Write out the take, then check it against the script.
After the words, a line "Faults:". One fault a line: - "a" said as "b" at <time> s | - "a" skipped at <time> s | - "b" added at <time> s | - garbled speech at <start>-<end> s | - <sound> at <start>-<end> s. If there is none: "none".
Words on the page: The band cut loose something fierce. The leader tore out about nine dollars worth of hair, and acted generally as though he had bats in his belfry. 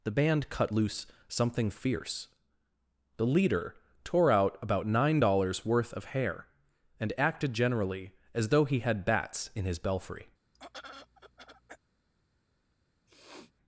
The band cut loose something fierce. The leader tore out about nine dollars worth of hair, and acted generally as though he had bats in his belfry.
Faults:
- throat clearing at 10.5-11.8 s
- sniff at 13.1-13.5 s